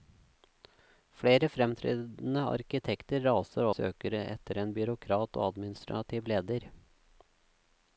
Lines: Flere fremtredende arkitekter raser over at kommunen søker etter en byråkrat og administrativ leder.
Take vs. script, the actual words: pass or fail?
fail